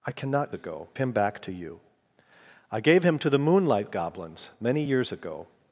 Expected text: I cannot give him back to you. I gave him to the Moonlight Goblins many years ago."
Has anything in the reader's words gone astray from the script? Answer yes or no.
yes